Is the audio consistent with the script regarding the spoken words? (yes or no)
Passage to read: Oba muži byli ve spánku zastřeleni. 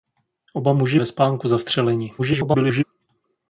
no